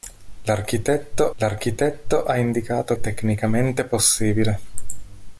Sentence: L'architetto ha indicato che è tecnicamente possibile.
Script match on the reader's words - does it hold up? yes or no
no